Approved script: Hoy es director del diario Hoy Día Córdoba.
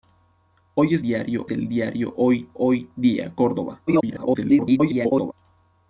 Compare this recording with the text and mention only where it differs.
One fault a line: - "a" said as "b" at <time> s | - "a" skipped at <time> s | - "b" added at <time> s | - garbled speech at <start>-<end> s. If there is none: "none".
- "director" said as "diario" at 1.0 s
- "Hoy" added at 2.6 s
- garbled speech at 3.9-5.3 s